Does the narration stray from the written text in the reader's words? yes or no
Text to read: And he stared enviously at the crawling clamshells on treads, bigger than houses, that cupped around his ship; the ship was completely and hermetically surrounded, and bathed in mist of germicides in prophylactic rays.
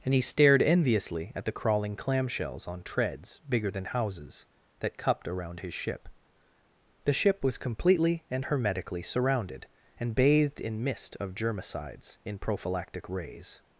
no